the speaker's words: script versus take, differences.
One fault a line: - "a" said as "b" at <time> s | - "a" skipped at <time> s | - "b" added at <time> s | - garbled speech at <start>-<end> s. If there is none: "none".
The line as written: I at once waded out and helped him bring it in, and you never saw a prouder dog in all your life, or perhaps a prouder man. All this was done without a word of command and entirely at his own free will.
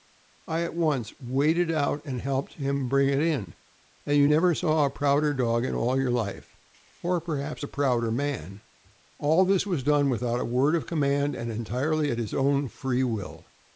none